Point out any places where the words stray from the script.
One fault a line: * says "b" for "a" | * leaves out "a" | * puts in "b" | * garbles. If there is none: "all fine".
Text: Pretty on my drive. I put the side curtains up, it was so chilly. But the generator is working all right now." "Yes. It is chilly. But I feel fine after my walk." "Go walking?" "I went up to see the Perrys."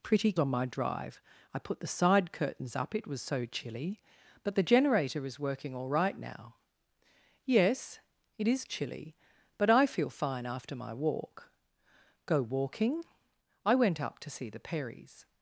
all fine